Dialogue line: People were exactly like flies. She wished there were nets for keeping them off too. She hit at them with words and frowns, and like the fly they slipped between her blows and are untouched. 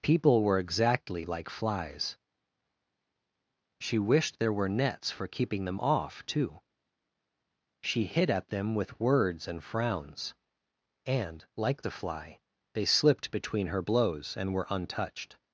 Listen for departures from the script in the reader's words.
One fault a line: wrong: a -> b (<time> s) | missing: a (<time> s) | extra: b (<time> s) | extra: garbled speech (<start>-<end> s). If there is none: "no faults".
wrong: are -> were (14.5 s)